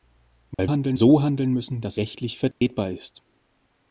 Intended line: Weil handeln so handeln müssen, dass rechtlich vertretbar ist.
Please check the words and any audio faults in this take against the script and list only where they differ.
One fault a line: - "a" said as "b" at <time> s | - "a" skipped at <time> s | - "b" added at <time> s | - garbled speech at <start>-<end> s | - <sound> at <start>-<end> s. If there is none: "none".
- dropout at 0.5-0.6 s
- dropout at 2.5-2.6 s